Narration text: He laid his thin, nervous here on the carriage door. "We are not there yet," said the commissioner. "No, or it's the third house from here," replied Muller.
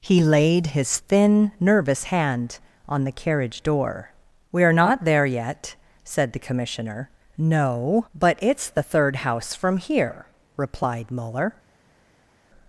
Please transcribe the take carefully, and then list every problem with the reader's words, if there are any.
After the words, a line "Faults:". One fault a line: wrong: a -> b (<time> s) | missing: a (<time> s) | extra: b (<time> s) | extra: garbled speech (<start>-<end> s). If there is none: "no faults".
He laid his thin, nervous hand on the carriage door. "We are not there yet," said the commissioner. "No, but it's the third house from here," replied Muller.
Faults:
wrong: here -> hand (2.0 s)
wrong: or -> but (8.2 s)